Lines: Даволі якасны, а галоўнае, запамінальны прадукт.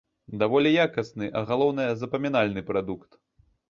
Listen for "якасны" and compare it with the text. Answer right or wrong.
right